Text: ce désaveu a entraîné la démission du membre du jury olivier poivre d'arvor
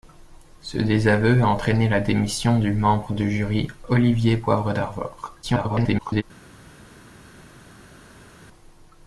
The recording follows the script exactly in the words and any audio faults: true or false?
false